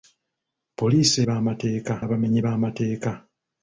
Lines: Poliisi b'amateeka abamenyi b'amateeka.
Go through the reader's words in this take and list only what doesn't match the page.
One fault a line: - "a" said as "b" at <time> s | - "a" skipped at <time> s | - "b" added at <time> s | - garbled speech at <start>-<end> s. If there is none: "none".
none